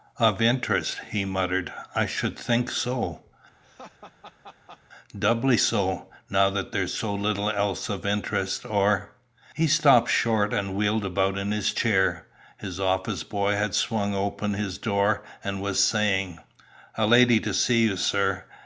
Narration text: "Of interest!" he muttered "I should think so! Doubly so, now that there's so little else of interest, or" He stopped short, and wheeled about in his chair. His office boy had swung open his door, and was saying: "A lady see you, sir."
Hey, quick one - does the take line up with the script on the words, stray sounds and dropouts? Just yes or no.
no